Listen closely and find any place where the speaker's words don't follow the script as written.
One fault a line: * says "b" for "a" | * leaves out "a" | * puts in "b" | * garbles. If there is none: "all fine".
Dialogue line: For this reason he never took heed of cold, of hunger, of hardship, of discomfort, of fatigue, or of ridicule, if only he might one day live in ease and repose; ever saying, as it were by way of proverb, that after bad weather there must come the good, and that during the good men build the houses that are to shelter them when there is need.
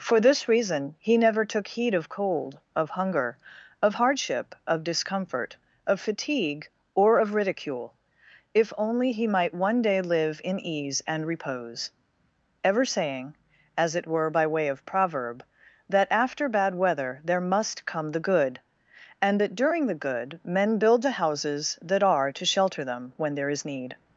all fine